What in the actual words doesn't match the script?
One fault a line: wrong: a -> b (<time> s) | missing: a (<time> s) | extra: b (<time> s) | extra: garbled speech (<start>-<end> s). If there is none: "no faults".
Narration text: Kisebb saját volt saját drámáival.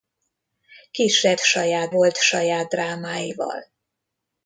no faults